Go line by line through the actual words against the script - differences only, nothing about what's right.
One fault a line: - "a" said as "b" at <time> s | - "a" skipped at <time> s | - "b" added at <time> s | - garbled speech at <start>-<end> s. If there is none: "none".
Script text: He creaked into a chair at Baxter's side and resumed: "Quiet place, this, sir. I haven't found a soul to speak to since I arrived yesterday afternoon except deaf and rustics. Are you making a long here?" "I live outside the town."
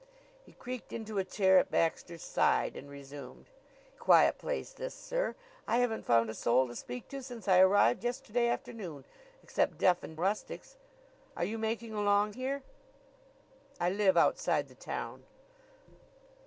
none